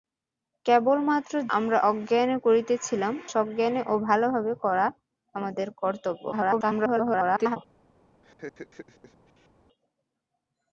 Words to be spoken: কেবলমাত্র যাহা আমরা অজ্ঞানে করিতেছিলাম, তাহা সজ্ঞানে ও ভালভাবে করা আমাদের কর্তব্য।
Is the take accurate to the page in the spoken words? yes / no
no